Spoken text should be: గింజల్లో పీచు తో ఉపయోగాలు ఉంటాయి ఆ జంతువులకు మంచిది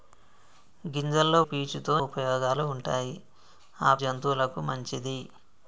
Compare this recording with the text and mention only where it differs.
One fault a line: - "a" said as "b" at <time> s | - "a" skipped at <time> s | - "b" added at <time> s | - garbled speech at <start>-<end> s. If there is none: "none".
none